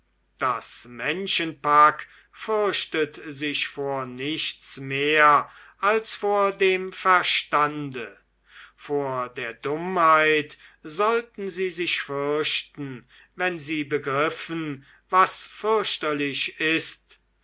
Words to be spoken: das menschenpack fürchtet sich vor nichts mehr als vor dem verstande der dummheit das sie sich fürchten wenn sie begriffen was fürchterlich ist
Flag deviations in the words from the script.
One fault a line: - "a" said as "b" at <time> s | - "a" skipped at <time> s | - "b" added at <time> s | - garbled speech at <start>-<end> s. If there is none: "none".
- "vor" added at 8.8 s
- "das" said as "sollten" at 10.8 s